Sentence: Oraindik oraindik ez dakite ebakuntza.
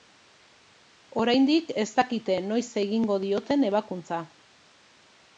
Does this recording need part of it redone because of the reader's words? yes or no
yes